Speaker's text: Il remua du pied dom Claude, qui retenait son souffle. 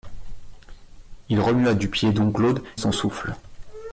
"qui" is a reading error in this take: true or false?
true